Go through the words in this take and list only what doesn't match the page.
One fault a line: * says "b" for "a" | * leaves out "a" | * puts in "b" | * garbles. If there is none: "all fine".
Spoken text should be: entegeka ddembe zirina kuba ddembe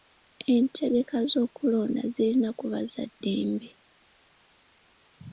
* says "z'okulonda" for "ddembe"
* puts in "za"